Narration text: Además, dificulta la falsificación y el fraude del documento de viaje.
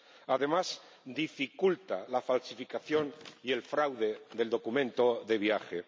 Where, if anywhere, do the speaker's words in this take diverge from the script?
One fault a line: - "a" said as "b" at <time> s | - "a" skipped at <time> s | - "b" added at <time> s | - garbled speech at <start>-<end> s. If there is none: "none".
none